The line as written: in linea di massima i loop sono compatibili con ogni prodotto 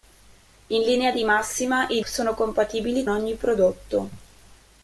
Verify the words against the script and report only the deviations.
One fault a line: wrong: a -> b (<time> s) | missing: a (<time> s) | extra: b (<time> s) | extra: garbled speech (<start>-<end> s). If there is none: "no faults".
missing: loop (2.0 s)
missing: con (3.0 s)